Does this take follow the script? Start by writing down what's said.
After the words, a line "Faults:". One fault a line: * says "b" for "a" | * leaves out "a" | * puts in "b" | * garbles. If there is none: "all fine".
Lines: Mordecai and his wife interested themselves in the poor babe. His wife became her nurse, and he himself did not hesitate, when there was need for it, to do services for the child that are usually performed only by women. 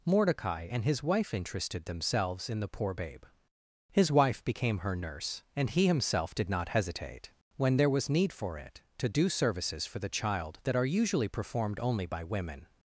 Mordecai and his wife interested themselves in the poor babe. His wife became her nurse, and he himself did not hesitate, when there was need for it, to do services for the child that are usually performed only by women.
Faults:
all fine